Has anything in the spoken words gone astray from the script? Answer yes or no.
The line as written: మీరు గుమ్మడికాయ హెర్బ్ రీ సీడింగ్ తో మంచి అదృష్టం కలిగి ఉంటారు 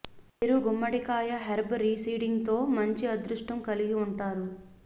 no